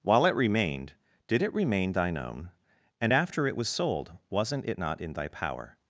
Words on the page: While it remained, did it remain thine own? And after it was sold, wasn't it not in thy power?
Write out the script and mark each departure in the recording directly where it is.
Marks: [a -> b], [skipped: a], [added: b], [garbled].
While it remained, did it remain thine own? And after it was sold, wasn't it not in thy power?